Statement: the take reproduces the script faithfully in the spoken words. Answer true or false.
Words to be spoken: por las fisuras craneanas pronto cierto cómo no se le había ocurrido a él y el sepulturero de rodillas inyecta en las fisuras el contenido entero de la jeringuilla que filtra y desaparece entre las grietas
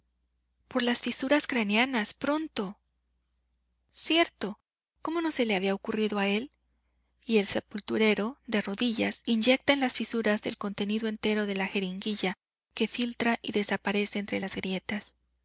true